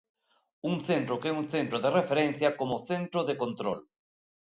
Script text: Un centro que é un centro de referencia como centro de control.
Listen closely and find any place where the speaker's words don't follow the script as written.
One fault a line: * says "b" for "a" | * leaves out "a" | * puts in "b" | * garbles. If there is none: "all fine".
all fine